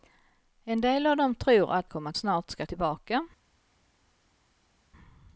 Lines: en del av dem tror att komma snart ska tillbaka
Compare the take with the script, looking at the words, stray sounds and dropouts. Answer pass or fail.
pass